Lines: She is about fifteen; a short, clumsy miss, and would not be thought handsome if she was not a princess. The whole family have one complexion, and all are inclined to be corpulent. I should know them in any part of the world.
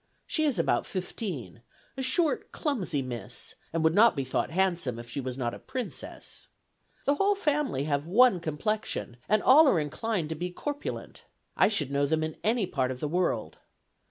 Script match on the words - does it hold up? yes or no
yes